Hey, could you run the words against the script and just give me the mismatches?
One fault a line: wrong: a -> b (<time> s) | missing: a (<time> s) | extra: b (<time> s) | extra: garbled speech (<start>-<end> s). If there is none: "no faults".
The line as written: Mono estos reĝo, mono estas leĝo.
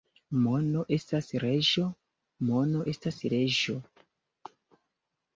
wrong: estos -> estas (0.9 s)